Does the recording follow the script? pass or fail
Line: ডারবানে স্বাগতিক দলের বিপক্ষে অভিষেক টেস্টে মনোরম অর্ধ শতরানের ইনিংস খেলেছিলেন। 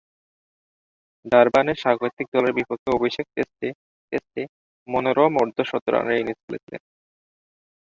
fail